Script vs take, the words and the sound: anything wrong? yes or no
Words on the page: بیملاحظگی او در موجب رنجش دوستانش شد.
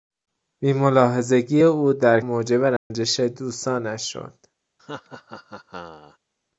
yes